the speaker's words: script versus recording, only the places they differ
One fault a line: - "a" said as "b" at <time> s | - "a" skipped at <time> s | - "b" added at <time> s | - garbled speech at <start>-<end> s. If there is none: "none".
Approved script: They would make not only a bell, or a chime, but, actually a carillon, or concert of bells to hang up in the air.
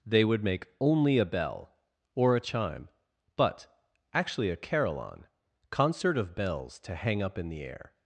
- "not" skipped at 0.7 s
- "or" skipped at 5.3 s